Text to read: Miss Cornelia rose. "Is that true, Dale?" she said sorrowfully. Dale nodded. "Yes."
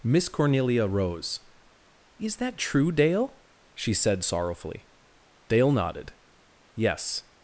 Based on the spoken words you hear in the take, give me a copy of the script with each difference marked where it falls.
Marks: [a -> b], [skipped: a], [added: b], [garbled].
Miss Cornelia rose. "Is that true, Dale?" she said sorrowfully. Dale nodded. "Yes."